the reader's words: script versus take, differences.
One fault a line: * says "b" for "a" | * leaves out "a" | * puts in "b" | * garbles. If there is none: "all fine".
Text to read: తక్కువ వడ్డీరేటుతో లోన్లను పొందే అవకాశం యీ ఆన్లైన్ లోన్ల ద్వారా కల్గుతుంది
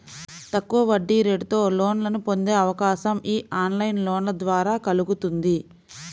all fine